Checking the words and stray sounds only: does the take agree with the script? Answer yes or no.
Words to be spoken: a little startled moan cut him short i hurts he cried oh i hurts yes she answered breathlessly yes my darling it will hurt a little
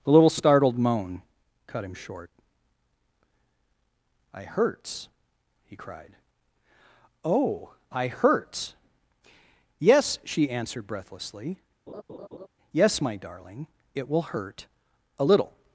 no